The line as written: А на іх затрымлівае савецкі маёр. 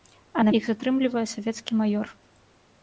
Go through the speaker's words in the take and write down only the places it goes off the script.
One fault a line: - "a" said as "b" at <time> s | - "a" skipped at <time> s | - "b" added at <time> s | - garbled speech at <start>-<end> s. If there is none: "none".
none